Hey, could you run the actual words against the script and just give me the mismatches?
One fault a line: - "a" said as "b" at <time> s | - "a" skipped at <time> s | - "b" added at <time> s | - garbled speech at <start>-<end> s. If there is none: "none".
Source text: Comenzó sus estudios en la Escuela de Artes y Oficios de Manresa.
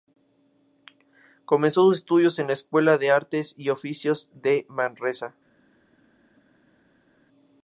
none